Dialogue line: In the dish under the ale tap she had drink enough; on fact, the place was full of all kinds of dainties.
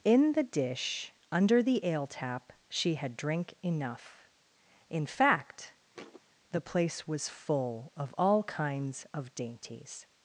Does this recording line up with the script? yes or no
no